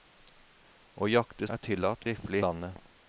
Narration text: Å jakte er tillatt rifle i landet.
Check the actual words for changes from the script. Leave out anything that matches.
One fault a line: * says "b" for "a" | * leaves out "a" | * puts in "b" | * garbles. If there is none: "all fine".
all fine